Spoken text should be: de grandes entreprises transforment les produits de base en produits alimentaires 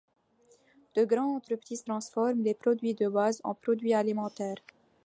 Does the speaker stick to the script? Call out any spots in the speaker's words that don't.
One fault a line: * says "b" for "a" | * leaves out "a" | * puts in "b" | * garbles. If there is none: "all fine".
all fine